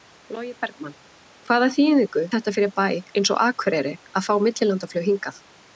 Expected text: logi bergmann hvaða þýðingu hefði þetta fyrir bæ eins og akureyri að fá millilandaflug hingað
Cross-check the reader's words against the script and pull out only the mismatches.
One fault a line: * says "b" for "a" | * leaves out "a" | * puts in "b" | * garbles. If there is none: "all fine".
* leaves out "hefði"